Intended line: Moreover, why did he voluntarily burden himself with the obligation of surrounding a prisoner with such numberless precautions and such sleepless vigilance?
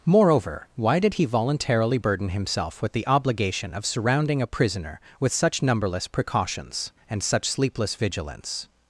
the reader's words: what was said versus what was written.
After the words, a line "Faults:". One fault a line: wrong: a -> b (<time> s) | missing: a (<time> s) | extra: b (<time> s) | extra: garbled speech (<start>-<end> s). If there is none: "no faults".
Moreover, why did he voluntarily burden himself with the obligation of surrounding a prisoner with such numberless precautions and such sleepless vigilance?
Faults:
no faults